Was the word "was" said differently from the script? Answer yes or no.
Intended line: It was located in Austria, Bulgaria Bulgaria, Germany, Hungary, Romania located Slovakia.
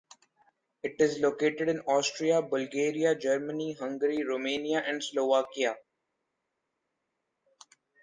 yes